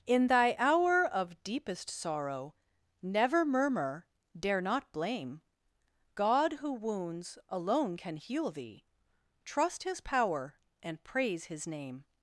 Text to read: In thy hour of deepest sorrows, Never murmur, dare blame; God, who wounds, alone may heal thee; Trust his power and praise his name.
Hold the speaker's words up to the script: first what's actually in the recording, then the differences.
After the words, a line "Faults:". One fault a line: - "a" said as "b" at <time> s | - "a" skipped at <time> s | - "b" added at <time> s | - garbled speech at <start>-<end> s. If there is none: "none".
In thy hour of deepest sorrow, Never murmur, dare not blame; God, who wounds, alone can heal thee; Trust his power and praise his name.
Faults:
- "sorrows" said as "sorrow" at 1.9 s
- "not" added at 4.6 s
- "may" said as "can" at 7.9 s